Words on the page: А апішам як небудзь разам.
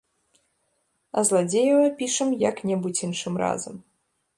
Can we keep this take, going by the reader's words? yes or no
no